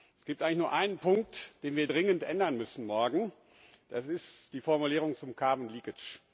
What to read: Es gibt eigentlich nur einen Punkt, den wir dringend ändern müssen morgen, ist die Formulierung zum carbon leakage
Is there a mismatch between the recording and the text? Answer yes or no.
yes